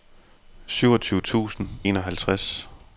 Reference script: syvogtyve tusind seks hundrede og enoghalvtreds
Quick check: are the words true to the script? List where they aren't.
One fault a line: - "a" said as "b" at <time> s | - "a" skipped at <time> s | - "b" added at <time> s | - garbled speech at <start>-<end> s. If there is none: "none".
- "seks hundrede og" skipped at 1.7 s